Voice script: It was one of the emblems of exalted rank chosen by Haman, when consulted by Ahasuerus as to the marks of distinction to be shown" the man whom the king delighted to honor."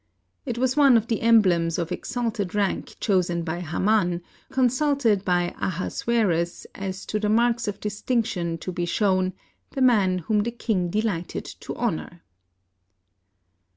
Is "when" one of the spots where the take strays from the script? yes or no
yes